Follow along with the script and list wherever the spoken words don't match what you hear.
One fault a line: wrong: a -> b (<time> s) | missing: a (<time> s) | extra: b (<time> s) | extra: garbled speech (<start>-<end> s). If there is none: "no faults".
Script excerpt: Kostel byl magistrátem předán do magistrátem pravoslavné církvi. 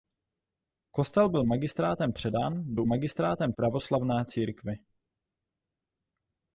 no faults